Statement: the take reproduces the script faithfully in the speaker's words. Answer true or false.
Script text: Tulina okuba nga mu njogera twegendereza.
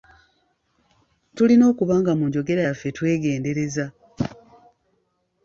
false